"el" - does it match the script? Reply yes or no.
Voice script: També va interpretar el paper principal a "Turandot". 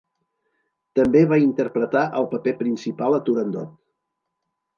yes